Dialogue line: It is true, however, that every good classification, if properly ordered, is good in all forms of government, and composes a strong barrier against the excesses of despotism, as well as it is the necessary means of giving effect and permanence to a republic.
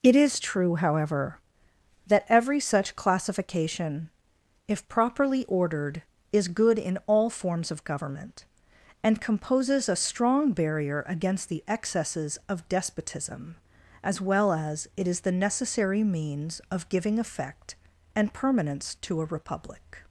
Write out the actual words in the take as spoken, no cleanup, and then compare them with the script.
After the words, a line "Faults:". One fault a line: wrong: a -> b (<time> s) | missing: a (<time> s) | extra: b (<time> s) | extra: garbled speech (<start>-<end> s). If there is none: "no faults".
It is true, however, that every such classification, if properly ordered, is good in all forms of government, and composes a strong barrier against the excesses of despotism, as well as it is the necessary means of giving effect and permanence to a republic.
Faults:
wrong: good -> such (2.6 s)